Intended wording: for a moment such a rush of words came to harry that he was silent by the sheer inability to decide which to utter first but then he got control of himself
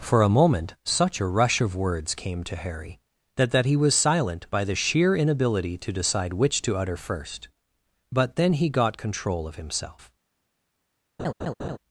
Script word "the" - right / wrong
right